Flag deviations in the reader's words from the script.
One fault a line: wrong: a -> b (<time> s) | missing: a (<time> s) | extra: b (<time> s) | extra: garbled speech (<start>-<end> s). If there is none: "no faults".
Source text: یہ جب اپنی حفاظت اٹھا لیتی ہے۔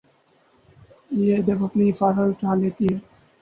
no faults